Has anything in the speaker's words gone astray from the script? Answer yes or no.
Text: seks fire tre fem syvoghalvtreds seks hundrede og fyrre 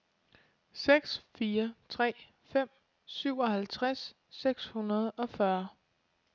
no